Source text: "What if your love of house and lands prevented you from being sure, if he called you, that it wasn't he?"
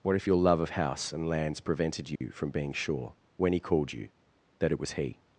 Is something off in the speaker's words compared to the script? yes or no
yes